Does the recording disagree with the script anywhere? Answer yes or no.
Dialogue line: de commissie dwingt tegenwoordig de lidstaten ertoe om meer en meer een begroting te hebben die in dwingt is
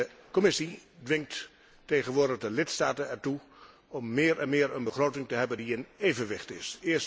yes